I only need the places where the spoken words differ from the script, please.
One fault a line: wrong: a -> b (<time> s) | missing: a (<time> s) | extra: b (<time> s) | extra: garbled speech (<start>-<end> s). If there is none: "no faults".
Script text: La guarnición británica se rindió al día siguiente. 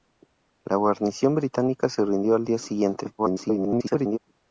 extra: garbled speech (3.2-4.2 s)